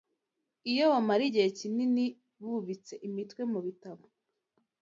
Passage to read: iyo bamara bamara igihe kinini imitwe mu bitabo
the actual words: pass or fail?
fail